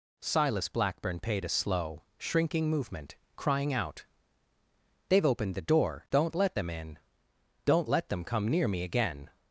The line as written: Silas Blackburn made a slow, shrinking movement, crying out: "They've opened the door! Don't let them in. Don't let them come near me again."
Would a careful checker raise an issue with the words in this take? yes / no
yes